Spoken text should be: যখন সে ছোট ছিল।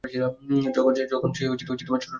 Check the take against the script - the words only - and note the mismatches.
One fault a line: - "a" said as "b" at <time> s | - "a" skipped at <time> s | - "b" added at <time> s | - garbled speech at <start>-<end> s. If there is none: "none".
- "ছোট" added at 1.7 s